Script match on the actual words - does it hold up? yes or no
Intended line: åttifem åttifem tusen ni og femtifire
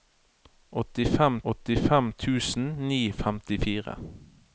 yes